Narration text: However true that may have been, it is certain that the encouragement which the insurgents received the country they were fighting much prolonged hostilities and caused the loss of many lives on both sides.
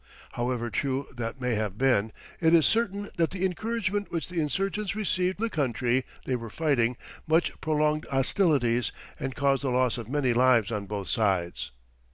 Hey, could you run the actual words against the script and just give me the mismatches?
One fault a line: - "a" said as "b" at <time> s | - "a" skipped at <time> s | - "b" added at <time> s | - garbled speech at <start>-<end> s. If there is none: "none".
none